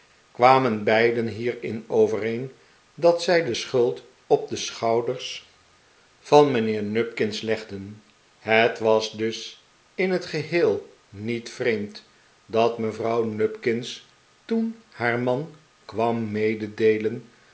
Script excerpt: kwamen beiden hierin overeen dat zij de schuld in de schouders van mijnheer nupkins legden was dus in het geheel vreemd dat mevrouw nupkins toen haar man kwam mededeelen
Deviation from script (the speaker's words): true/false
true